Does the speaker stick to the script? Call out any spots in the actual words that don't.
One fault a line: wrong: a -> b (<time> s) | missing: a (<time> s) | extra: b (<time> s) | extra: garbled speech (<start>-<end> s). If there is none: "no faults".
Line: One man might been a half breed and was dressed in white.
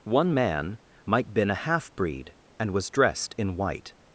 no faults